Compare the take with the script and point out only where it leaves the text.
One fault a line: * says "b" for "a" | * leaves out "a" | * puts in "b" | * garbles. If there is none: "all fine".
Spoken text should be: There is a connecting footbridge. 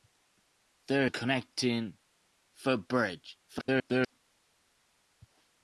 * leaves out "is"
* garbles